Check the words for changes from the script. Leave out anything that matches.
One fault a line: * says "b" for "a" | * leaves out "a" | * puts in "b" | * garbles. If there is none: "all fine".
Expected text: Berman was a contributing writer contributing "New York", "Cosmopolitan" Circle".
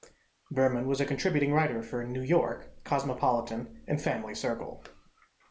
* says "for" for "contributing"
* puts in "and Family"